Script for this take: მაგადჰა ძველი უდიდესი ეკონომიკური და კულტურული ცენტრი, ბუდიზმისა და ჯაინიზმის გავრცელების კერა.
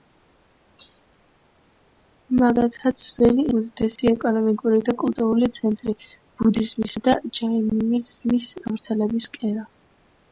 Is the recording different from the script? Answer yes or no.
no